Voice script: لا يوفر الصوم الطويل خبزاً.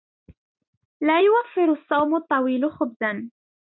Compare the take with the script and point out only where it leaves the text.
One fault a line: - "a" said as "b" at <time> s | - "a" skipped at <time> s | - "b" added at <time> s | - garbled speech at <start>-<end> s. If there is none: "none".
none